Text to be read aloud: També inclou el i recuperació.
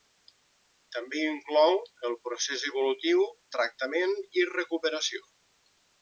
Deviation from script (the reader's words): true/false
true